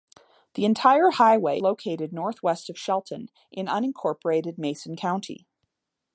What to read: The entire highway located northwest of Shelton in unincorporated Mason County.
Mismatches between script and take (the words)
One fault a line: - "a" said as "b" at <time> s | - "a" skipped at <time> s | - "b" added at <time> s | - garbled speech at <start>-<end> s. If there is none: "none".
none